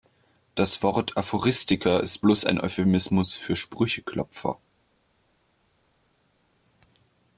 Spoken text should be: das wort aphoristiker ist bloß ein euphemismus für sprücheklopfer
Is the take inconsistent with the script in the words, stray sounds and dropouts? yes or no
no